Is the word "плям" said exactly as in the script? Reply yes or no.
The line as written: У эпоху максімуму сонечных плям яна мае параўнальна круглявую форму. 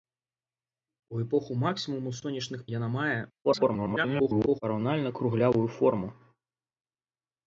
no